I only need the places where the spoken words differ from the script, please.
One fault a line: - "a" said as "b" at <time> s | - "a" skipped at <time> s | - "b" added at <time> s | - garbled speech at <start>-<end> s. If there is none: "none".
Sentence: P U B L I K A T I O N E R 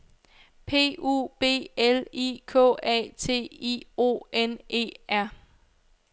none